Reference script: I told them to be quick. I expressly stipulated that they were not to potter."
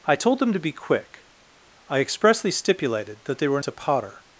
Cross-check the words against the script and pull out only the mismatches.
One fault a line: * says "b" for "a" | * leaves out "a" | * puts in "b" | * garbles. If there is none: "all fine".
* leaves out "not"